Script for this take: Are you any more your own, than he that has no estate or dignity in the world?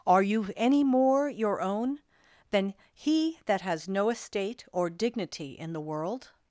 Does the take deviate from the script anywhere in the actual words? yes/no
no